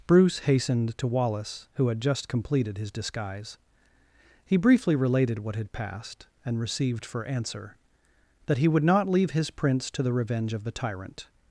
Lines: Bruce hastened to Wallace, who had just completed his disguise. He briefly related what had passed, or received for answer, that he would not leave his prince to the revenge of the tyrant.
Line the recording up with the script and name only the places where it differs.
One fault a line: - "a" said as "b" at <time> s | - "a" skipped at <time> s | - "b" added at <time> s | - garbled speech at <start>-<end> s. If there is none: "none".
- "or" said as "and" at 6.5 s